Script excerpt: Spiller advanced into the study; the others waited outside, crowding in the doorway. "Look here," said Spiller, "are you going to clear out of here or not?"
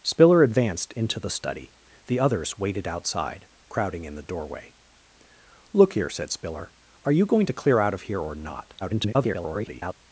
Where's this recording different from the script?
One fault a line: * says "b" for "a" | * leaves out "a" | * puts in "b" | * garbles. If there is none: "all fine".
* garbles